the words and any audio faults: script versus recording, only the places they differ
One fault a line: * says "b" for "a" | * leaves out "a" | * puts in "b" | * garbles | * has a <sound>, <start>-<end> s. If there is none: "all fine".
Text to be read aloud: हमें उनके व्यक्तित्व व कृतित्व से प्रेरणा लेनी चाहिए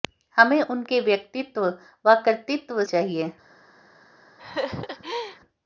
* leaves out "से प्रेरणा लेनी"
* has a laugh, 4.4-5.4 s